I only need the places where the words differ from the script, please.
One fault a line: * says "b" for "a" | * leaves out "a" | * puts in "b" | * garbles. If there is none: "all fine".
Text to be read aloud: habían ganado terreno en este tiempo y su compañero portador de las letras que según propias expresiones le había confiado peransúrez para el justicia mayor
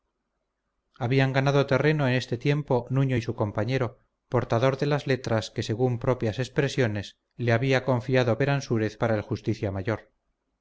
* puts in "nuño"